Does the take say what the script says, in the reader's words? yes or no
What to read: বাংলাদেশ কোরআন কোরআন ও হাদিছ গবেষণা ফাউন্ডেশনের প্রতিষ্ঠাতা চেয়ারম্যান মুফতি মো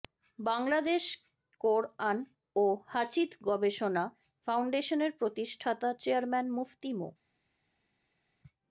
no